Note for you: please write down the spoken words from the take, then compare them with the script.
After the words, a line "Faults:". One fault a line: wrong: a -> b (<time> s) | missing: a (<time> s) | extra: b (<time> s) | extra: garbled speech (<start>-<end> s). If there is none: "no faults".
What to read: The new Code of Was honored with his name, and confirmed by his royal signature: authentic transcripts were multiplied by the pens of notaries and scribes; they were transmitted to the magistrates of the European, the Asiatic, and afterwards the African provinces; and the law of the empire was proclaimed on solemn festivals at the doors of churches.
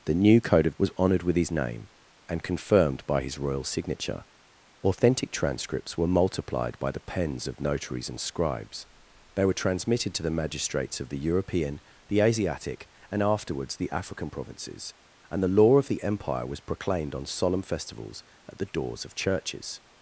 The new Code of Was honored with his name, and confirmed by his royal signature: authentic transcripts were multiplied by the pens of notaries and scribes; they were transmitted to the magistrates of the European, the Asiatic, and afterwards the African provinces; and the law of the empire was proclaimed on solemn festivals at the doors of churches.
Faults:
no faults